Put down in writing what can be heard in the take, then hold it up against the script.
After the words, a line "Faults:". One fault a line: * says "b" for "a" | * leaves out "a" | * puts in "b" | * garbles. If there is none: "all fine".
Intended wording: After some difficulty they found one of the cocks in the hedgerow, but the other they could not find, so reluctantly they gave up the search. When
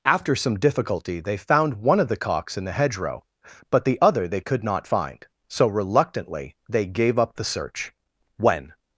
After some difficulty they found one of the cocks in the hedgerow, but the other they could not find, so reluctantly they gave up the search. When
Faults:
all fine